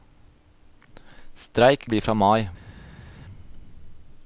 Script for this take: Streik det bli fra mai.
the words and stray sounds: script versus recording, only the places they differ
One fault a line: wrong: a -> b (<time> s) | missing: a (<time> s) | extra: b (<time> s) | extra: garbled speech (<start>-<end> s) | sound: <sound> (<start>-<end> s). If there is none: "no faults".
no faults